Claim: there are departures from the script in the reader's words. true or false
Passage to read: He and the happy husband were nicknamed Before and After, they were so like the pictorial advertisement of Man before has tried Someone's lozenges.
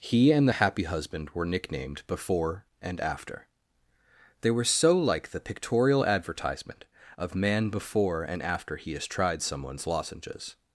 true